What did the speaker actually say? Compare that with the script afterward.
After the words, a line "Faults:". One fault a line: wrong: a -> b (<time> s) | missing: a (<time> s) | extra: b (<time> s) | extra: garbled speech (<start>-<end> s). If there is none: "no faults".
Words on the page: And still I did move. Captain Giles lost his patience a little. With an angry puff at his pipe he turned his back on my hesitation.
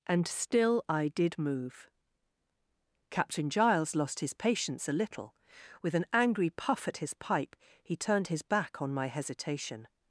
And still I did move. Captain Giles lost his patience a little. With an angry puff at his pipe he turned his back on my hesitation.
Faults:
no faults